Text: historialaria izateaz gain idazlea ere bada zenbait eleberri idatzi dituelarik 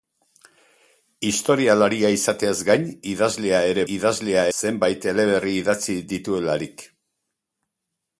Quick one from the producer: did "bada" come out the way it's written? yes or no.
no